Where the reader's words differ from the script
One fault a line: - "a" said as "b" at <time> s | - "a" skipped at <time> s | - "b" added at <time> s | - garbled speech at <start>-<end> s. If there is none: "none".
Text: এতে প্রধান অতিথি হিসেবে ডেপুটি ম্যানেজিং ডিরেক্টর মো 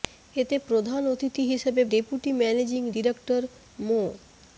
none